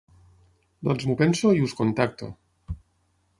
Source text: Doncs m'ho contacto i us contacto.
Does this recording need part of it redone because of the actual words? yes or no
yes